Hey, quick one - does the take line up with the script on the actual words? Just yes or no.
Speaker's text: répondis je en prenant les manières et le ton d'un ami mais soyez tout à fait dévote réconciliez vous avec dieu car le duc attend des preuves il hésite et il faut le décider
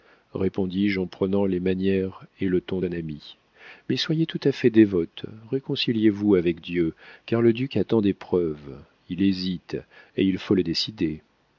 yes